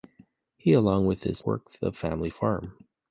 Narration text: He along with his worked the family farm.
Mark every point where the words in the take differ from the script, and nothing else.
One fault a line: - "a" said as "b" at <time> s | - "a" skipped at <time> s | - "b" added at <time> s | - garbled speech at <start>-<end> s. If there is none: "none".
none